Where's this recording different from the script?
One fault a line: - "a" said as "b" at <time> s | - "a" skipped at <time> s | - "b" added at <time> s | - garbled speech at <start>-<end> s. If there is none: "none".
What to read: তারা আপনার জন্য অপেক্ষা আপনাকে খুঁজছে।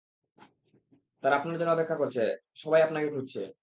- "করছে সবাই" added at 2.0 s